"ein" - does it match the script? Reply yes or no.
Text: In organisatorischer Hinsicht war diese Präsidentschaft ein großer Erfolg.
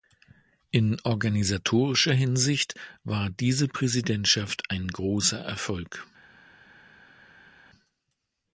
yes